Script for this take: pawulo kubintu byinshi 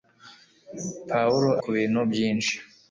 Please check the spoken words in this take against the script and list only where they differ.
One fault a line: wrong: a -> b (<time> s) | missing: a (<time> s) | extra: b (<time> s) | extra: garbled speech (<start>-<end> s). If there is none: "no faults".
no faults